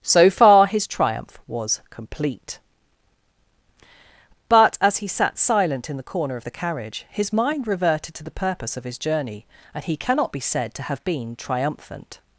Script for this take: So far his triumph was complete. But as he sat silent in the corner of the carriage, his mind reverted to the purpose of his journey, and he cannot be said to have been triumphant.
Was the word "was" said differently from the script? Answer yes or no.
no